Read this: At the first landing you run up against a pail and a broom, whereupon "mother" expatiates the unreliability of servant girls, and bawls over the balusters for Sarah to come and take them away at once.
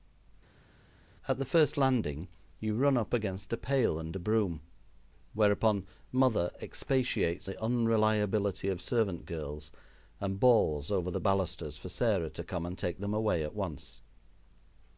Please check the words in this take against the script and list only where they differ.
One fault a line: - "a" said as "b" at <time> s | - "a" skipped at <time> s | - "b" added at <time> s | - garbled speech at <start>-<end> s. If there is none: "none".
none